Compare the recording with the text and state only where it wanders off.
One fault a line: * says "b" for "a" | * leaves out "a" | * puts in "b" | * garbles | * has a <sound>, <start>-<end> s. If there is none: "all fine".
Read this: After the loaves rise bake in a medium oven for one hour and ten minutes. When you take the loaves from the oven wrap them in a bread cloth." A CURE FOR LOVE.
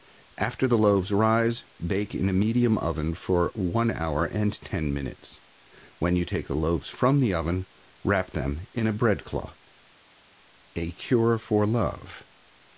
all fine